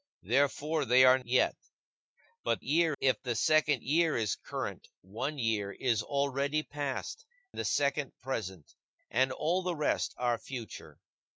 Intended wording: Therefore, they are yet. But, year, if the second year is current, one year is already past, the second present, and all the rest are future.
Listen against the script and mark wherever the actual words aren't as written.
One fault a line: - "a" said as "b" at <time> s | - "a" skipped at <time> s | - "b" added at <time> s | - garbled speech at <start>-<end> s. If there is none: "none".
none